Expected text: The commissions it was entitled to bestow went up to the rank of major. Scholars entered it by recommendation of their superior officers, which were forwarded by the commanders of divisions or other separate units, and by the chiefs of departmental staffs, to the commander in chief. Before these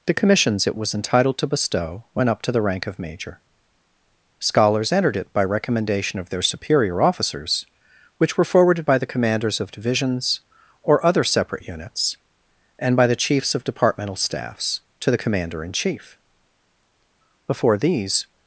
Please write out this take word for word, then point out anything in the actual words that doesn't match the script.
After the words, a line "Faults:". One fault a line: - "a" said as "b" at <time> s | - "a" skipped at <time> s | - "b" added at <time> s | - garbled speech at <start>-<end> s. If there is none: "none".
The commissions it was entitled to bestow went up to the rank of major. Scholars entered it by recommendation of their superior officers, which were forwarded by the commanders of divisions or other separate units, and by the chiefs of departmental staffs, to the commander in chief. Before these
Faults:
none